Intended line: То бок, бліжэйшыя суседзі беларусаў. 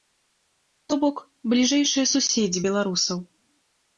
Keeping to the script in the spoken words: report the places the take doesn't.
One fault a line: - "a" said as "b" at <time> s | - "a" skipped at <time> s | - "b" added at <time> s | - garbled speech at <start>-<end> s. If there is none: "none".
none